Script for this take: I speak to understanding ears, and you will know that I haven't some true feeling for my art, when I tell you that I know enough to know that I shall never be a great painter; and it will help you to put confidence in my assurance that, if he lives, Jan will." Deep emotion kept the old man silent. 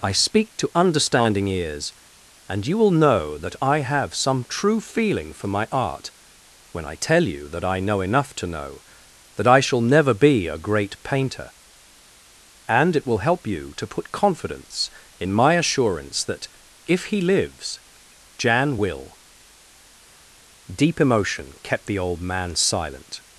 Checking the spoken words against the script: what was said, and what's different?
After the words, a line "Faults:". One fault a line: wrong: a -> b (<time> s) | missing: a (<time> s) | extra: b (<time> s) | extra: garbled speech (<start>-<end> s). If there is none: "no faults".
I speak to understanding ears, and you will know that I have some true feeling for my art, when I tell you that I know enough to know that I shall never be a great painter; and it will help you to put confidence in my assurance that, if he lives, Jan will." Deep emotion kept the old man silent.
Faults:
wrong: haven't -> have (3.8 s)